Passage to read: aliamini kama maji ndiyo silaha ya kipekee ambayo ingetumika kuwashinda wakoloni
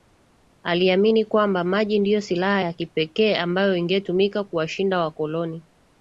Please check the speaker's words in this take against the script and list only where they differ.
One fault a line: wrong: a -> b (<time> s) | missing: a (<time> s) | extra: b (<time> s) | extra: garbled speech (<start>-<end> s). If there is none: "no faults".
wrong: kama -> kwamba (1.2 s)